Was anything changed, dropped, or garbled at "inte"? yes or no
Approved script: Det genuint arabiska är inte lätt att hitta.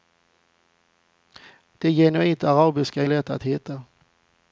yes